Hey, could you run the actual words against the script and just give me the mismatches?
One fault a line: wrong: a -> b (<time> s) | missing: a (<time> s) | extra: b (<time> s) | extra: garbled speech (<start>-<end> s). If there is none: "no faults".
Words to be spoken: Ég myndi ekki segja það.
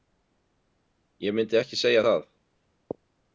no faults